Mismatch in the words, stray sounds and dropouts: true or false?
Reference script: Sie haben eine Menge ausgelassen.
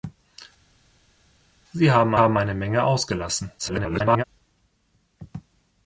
true